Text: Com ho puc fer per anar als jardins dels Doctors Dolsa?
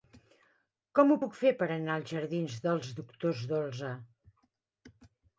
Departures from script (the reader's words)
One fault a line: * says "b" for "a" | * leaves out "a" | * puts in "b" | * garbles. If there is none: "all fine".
all fine